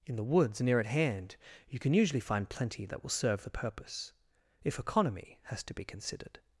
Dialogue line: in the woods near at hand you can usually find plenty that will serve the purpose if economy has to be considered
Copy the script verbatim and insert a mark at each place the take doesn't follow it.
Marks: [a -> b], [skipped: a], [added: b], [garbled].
in the woods near at hand you can usually find plenty that will serve the purpose if economy has to be considered